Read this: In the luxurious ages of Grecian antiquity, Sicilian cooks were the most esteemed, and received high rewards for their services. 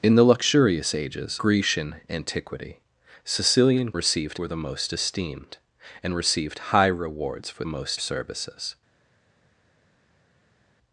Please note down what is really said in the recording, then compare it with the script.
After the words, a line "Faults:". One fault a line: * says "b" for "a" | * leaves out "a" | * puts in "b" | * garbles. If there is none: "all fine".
In the luxurious ages Grecian antiquity, Sicilian received were the most esteemed, and received high rewards for most services.
Faults:
* leaves out "of"
* says "received" for "cooks"
* says "most" for "their"